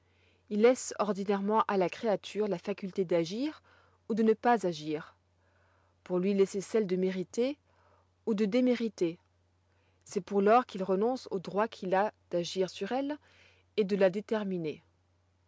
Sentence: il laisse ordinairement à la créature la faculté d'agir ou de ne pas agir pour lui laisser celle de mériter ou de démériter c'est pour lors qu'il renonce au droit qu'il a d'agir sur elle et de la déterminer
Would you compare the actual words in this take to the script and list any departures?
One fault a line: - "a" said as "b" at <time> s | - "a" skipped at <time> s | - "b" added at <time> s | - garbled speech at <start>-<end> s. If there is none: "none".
none